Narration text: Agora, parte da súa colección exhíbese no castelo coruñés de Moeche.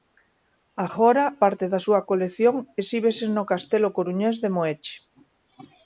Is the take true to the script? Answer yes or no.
yes